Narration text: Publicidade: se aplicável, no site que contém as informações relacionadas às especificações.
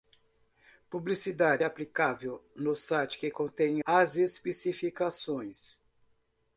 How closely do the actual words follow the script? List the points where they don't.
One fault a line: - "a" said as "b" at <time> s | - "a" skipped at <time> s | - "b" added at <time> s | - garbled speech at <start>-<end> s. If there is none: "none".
- "se" skipped at 1.6 s
- "as informações relacionadas" skipped at 3.8 s